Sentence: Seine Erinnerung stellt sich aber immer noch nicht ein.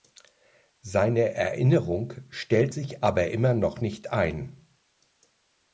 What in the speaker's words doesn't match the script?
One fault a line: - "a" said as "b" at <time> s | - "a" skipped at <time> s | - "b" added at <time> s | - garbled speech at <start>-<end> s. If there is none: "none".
none